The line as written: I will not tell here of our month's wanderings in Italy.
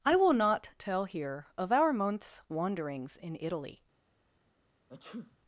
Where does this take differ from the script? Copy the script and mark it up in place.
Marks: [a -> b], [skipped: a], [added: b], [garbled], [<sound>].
I will not tell here of our month's wanderings in Italy. [sneeze]